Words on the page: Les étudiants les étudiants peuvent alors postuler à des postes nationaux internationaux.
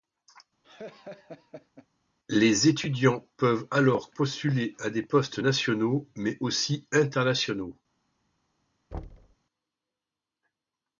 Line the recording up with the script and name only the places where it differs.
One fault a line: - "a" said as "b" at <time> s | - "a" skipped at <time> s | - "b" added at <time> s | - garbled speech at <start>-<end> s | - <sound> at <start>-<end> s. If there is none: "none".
- laugh at 0.6-1.9 s
- "les étudiants" skipped at 3.3 s
- "mais aussi" added at 6.2 s
- thud at 8.9-9.4 s